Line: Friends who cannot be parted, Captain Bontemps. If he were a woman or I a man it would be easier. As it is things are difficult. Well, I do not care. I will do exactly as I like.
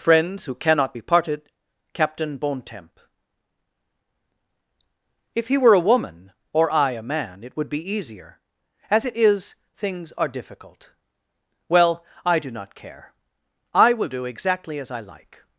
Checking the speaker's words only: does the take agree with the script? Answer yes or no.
yes